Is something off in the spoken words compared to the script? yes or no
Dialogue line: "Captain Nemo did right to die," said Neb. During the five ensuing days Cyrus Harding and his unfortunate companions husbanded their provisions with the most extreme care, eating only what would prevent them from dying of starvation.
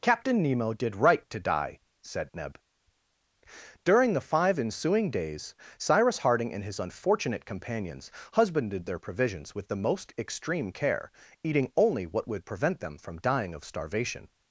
no